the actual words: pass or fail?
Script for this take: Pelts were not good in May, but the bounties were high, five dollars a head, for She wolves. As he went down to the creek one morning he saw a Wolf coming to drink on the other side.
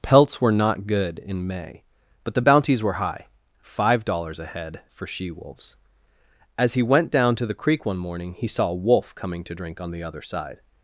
pass